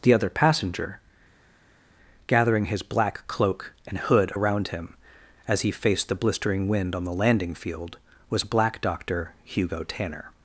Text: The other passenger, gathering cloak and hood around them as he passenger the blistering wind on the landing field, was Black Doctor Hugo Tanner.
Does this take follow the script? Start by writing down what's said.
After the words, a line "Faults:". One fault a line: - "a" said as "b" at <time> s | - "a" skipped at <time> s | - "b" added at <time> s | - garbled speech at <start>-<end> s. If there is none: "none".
The other passenger, gathering his black cloak and hood around him as he faced the blistering wind on the landing field, was Black Doctor Hugo Tanner.
Faults:
- "his black" added at 2.7 s
- "them" said as "him" at 4.7 s
- "passenger" said as "faced" at 5.7 s